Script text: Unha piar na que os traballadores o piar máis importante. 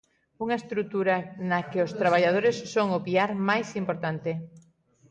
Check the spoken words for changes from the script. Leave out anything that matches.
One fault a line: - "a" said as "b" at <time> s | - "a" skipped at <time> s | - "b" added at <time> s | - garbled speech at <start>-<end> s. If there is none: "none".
- "piar" said as "estrutura" at 0.6 s
- "son" added at 2.7 s